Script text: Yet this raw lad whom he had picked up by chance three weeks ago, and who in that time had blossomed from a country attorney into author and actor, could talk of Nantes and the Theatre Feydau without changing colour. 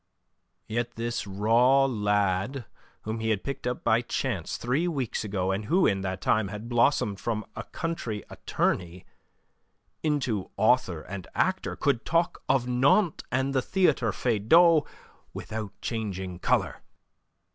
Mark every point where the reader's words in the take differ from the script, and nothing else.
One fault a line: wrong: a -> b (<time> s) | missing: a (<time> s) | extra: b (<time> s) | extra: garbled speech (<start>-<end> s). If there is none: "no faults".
no faults